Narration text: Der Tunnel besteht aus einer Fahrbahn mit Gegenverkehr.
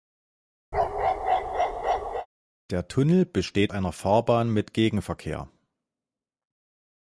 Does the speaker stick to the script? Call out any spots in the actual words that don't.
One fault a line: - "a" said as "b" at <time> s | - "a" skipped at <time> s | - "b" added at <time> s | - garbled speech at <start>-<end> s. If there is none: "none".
- "aus" skipped at 3.7 s